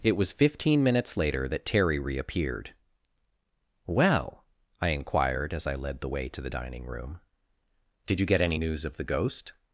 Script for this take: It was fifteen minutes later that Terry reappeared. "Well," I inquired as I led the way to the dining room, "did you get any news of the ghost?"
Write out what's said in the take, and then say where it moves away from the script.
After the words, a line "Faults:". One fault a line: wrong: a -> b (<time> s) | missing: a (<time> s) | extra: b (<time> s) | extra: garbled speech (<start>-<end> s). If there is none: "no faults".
It was fifteen minutes later that Terry reappeared. "Well," I inquired as I led the way to the dining room, "did you get any news of the ghost?"
Faults:
no faults